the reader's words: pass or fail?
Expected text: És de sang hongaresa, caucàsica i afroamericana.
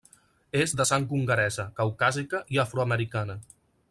pass